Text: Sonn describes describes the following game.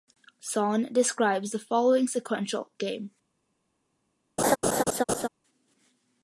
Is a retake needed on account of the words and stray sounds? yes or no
yes